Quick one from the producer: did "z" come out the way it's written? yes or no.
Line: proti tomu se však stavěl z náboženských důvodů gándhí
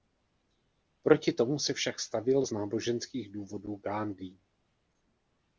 yes